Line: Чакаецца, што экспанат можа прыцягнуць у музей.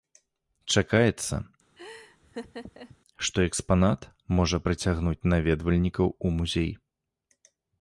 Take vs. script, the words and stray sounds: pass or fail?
fail